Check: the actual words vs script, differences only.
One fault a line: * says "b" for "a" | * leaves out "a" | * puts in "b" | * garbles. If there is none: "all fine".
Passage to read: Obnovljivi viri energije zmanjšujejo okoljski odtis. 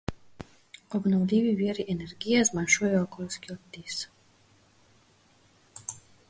all fine